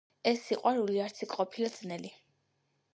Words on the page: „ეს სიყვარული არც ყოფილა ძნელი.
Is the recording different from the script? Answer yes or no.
yes